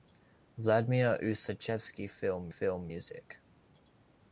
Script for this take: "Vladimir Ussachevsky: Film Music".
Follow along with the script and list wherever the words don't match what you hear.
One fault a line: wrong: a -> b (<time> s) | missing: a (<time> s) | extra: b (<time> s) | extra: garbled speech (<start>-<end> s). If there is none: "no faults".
extra: Film (2.5 s)